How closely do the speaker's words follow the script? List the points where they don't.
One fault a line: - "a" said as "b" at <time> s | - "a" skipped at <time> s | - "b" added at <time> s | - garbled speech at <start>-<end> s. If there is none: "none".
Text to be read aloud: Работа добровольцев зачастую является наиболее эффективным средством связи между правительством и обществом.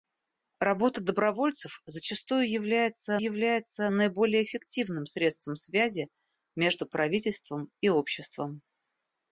- "является" added at 3.2 s